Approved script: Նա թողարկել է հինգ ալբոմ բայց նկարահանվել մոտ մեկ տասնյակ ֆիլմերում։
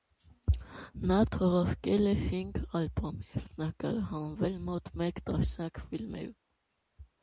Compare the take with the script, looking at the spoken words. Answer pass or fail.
fail